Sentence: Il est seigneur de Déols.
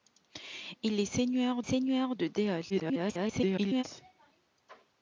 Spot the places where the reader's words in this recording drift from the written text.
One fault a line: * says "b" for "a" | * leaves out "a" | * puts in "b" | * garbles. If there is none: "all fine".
* puts in "seigneur"
* garbles